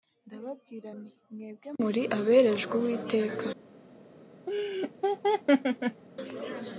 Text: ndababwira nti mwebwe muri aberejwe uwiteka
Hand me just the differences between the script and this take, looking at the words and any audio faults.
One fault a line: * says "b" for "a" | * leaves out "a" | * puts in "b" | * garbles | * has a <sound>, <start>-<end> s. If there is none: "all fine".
* has a laugh, 4.5-6.0 s